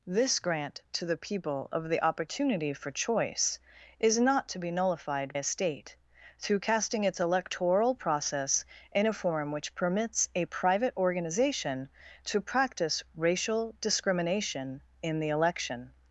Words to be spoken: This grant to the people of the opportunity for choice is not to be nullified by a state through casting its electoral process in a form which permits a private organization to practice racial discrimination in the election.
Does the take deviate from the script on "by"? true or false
true